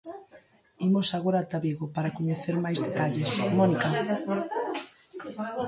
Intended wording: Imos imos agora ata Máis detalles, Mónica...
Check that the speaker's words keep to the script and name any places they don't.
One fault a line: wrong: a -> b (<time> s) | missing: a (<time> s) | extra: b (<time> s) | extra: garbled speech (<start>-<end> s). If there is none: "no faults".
missing: imos (1.1 s)
extra: Vigo para coñecer (1.6 s)